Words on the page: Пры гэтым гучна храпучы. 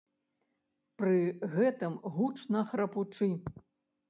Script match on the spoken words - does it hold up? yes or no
yes